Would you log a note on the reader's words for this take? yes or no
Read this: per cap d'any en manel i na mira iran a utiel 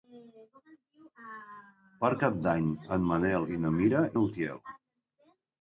yes